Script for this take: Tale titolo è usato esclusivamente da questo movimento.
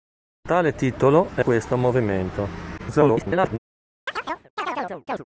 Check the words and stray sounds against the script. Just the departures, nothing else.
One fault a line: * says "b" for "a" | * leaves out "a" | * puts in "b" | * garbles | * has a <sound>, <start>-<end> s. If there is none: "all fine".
* leaves out "usato esclusivamente da"
* garbles
* has a chirp, 4.1-5.2 s